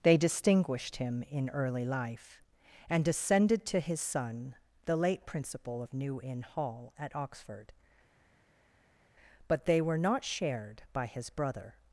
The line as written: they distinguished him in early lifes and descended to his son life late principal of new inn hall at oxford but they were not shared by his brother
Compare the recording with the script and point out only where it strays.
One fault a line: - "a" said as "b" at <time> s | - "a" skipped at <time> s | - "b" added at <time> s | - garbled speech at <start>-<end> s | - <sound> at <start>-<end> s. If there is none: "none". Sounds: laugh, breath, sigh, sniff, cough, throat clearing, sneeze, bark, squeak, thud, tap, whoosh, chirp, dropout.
- "lifes" said as "life" at 1.9 s
- "life" said as "the" at 4.8 s